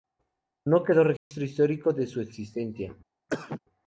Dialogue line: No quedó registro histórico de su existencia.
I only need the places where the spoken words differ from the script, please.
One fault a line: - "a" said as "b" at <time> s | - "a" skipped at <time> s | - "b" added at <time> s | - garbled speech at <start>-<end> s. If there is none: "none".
none